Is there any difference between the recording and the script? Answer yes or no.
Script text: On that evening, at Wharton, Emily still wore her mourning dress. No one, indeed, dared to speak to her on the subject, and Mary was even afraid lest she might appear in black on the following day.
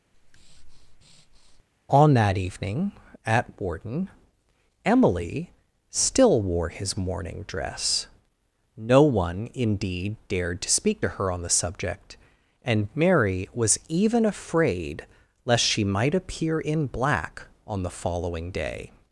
yes